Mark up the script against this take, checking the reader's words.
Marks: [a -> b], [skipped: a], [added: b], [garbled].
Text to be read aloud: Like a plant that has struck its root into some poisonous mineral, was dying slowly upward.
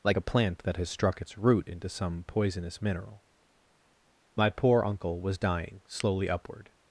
Like a plant that has struck its root into some poisonous mineral, [added: my poor uncle] was dying slowly upward.